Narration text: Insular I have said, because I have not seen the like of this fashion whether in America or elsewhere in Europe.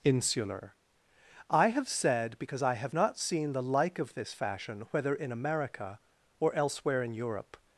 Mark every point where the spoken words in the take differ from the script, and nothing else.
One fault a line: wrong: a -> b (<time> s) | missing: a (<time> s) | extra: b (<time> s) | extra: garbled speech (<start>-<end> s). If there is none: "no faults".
no faults